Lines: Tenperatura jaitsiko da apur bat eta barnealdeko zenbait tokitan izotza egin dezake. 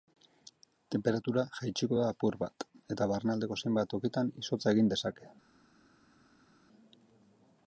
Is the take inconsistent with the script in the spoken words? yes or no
no